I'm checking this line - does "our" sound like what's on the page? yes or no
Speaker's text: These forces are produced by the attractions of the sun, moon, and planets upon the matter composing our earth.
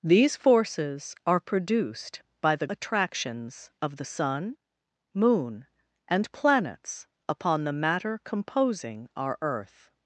yes